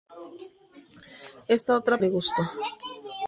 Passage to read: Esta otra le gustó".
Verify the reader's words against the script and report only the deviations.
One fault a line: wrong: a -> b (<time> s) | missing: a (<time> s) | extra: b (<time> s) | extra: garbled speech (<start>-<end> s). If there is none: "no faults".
no faults